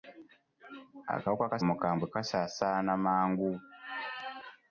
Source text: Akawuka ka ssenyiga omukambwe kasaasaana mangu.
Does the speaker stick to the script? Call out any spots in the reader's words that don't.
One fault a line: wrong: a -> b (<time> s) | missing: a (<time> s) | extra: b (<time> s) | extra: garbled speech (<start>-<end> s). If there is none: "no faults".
missing: ssenyiga (1.6 s)